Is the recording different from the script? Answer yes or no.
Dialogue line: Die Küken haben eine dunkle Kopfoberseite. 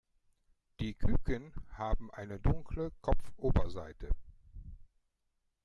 no